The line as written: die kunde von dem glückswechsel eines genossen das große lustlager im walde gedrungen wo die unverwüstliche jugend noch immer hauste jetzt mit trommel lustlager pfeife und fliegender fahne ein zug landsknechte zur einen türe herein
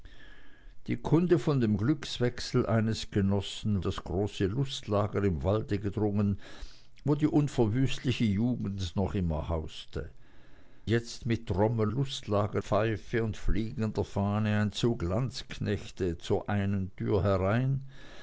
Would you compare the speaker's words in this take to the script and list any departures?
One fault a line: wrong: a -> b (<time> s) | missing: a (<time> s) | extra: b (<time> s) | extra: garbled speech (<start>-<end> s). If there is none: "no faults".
no faults